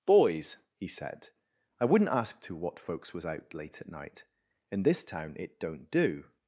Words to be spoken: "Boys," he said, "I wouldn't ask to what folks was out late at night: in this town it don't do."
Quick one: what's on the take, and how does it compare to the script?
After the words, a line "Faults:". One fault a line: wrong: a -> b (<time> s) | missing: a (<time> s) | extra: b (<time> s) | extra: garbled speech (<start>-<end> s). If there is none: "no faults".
"Boys," he said, "I wouldn't ask to what folks was out late at night: in this town it don't do."
Faults:
no faults